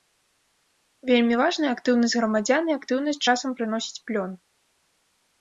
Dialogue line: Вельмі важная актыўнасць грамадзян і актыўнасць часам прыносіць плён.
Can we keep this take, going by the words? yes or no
yes